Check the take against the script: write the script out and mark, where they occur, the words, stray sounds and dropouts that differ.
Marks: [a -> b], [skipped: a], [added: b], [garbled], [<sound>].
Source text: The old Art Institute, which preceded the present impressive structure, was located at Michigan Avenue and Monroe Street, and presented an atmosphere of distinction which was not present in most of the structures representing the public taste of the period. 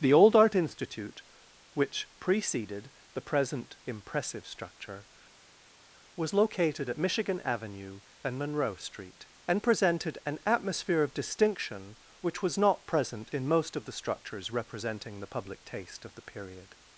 The old Art Institute, which preceded the present impressive structure, was located at Michigan Avenue and Monroe Street, and presented an atmosphere of distinction which was not present in most of the structures representing the public taste of the period.